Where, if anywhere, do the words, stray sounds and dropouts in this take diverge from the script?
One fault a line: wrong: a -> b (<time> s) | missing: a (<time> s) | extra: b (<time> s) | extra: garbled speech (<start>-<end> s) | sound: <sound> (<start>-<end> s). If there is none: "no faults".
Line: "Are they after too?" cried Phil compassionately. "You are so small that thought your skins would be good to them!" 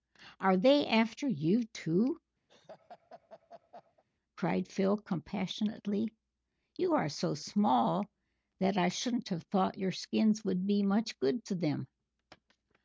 extra: you (1.3 s)
sound: laugh (2.5-4.0 s)
extra: I shouldn't have (8.8 s)
extra: much (10.8 s)